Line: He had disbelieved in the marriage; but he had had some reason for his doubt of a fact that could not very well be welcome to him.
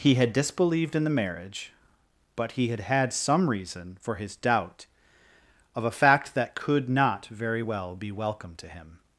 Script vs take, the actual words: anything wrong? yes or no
no